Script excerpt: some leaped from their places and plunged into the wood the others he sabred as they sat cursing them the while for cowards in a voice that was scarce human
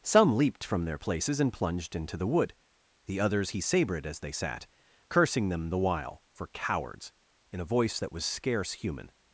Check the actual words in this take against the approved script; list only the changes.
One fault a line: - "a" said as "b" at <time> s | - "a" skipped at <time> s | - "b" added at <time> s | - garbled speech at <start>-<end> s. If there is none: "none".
none